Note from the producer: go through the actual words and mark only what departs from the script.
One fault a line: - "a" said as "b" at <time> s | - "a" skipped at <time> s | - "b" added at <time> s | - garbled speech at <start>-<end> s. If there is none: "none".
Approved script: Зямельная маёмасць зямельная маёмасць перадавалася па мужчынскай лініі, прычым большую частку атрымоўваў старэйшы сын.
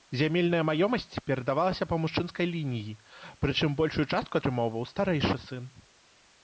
- "зямельная маёмасць" skipped at 1.2 s